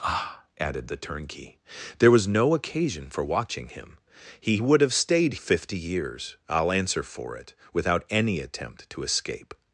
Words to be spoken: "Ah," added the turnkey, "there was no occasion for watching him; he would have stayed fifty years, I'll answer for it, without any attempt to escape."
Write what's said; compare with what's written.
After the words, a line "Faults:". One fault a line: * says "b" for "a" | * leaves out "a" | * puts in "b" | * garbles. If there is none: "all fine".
"Ah," added the turnkey, "there was no occasion for watching him; he would have stayed fifty years, I'll answer for it, without any attempt to escape."
Faults:
all fine